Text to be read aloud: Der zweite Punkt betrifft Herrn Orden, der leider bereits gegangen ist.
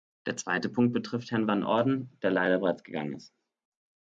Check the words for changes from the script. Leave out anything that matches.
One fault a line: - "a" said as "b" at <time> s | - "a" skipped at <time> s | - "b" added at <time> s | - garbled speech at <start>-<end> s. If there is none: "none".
- "Van" added at 1.4 s